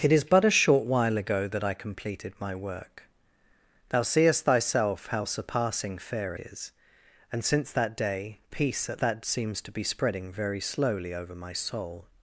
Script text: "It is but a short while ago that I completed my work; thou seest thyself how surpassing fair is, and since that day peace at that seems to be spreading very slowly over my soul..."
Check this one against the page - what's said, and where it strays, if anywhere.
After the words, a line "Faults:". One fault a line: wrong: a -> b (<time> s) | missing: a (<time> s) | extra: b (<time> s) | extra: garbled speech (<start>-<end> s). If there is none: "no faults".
"It is but a short while ago that I completed my work; thou seest thyself how surpassing fair is, and since that day peace at that seems to be spreading very slowly over my soul..."
Faults:
no faults